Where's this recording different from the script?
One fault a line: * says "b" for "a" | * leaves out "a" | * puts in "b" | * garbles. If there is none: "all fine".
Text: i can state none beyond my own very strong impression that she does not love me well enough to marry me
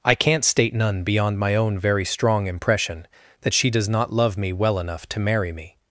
* says "can't" for "can"